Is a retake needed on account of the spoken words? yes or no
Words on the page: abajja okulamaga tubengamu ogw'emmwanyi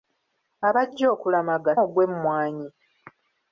yes